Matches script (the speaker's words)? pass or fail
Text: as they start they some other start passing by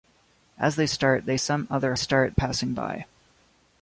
pass